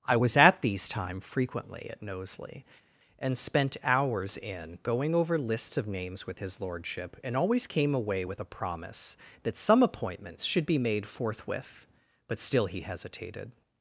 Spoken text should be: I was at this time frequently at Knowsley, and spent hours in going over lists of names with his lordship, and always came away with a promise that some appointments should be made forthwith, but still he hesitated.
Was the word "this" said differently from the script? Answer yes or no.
yes